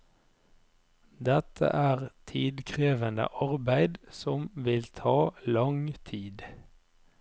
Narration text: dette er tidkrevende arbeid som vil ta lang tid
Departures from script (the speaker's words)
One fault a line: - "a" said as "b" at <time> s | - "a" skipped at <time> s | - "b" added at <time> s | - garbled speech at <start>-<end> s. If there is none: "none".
none